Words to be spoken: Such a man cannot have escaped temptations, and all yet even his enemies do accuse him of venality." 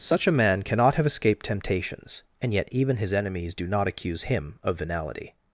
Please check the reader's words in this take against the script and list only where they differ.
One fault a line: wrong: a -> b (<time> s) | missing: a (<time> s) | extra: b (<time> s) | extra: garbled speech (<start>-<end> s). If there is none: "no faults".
missing: all (2.5 s)
extra: not (3.7 s)